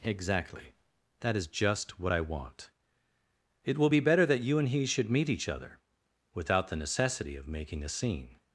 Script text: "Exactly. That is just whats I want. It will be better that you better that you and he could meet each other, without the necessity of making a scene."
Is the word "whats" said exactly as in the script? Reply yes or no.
no